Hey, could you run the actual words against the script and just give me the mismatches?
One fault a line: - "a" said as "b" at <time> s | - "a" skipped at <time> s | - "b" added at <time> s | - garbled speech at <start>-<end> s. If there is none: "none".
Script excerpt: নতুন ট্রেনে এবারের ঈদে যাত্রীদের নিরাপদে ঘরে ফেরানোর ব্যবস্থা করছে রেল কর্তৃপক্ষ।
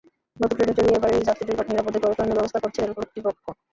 - "চড়িয়ে" added at 0.8 s